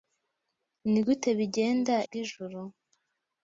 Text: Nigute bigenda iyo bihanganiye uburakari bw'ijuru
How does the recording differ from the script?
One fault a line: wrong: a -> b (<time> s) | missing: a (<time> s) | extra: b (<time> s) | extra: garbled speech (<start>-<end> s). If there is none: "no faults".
missing: iyo bihanganiye uburakari (1.9 s)